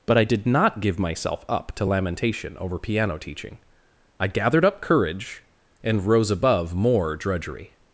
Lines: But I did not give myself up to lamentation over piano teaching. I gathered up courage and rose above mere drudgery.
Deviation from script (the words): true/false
true